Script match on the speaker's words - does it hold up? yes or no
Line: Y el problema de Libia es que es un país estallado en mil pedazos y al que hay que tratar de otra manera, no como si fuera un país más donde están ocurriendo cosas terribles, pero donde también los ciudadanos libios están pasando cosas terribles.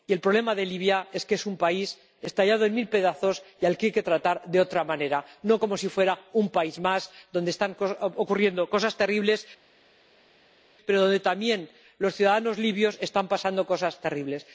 yes